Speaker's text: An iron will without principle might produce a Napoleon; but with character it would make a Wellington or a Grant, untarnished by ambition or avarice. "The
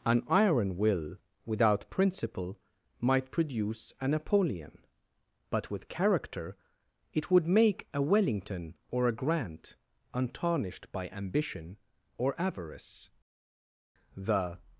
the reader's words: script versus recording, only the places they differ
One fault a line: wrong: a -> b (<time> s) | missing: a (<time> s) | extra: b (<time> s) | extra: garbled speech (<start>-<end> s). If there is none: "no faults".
no faults